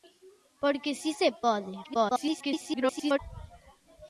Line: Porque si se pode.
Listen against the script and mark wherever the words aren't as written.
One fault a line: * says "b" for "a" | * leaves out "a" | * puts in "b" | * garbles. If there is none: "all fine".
* garbles